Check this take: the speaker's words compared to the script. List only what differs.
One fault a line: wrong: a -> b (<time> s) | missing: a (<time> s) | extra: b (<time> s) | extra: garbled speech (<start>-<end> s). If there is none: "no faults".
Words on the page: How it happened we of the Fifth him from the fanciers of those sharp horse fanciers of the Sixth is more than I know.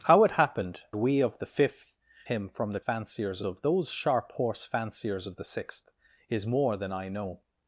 no faults